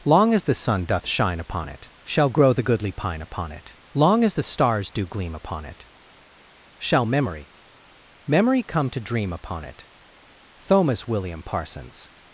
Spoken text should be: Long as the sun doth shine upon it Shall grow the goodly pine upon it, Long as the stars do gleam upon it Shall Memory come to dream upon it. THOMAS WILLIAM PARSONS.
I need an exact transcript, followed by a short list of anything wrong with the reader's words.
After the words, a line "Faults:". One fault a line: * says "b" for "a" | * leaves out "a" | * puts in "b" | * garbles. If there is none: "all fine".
Long as the sun doth shine upon it Shall grow the goodly pine upon it, Long as the stars do gleam upon it Shall Memory Memory come to dream upon it. THOMAS WILLIAM PARSONS.
Faults:
* puts in "Memory"